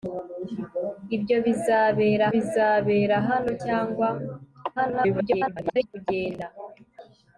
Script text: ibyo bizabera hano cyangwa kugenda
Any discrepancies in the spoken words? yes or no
yes